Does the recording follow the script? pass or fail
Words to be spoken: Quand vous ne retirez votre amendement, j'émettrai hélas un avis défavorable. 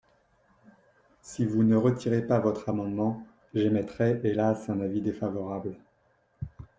fail